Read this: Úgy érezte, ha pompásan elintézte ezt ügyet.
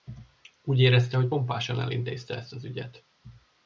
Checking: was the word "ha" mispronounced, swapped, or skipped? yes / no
yes